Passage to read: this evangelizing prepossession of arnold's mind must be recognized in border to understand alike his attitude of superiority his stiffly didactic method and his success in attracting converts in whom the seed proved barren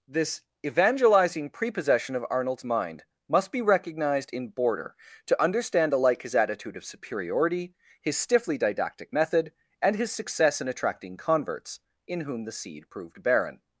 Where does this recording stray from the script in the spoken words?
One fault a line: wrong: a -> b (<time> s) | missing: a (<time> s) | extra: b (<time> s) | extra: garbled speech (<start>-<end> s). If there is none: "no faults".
no faults